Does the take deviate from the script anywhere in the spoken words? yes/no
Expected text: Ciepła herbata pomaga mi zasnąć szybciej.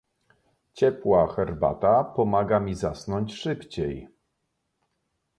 no